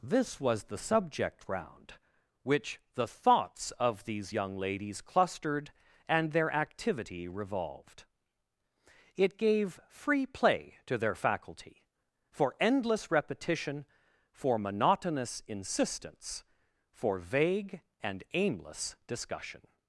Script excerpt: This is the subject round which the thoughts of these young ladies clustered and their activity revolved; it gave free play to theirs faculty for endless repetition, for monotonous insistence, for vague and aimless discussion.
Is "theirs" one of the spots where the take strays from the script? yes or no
yes